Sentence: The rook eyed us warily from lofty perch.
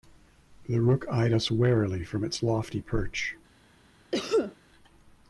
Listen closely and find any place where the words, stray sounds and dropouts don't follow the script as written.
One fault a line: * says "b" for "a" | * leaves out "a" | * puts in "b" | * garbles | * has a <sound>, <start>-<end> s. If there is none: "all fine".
* puts in "its"
* has a cough, 4.1-4.6 s